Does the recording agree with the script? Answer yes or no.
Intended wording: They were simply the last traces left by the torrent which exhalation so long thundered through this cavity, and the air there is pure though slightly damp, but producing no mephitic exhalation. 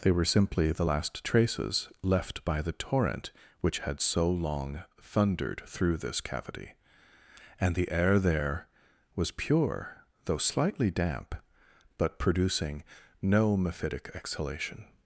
no